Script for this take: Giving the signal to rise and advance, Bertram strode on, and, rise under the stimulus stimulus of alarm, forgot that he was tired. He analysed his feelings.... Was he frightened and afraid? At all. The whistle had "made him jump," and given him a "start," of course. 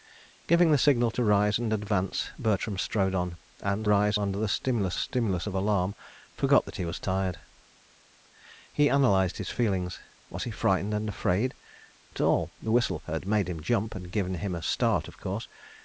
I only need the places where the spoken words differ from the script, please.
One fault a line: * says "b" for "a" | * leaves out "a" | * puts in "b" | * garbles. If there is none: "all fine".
all fine